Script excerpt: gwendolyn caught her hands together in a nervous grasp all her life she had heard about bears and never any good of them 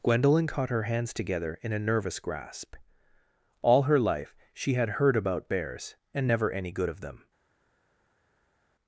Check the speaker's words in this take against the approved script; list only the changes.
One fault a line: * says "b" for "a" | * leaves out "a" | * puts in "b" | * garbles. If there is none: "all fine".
all fine